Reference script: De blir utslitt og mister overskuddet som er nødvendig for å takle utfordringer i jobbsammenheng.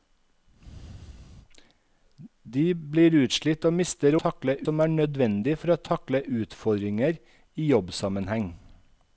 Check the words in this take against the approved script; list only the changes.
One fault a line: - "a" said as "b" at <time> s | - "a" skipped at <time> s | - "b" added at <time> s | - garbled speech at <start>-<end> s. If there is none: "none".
- "overskuddet" said as "takle" at 4.2 s